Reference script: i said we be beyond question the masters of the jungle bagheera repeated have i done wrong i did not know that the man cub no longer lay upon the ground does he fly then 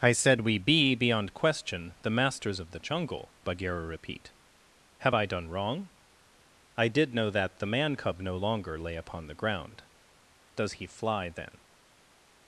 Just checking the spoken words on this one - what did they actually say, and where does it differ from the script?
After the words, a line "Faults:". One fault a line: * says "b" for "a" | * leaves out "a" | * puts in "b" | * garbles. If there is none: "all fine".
i said we be beyond question the masters of the jungle bagheera repeat have i done wrong i did know that the man cub no longer lay upon the ground does he fly then
Faults:
* says "repeat" for "repeated"
* leaves out "not"